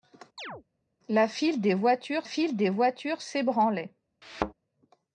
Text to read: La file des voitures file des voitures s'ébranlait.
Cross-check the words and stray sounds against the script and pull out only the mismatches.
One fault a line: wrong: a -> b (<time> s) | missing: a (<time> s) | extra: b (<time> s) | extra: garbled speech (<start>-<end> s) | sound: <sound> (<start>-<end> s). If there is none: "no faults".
sound: chirp (0.4-0.6 s)
sound: thud (4.2-4.5 s)